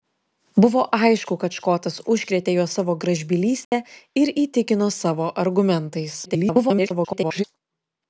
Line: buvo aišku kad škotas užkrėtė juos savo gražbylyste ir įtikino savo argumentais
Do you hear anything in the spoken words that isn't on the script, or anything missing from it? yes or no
yes